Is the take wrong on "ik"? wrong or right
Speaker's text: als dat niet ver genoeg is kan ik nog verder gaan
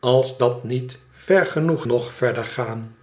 wrong